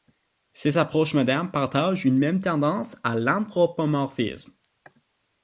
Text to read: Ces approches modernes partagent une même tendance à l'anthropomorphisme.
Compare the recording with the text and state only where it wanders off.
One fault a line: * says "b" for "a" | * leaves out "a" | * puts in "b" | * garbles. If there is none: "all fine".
all fine